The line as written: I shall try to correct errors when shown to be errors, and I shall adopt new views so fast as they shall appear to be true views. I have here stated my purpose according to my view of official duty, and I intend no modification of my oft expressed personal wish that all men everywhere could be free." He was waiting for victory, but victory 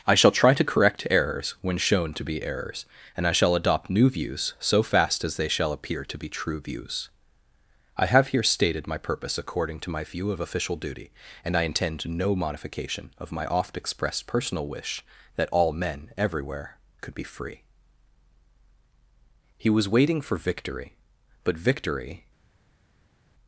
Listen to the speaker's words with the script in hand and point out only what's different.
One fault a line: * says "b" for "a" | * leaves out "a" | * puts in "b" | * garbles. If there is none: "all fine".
all fine